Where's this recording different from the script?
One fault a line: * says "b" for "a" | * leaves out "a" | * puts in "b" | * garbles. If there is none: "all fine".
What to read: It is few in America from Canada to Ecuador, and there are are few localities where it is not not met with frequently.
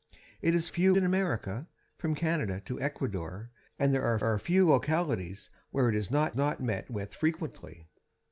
all fine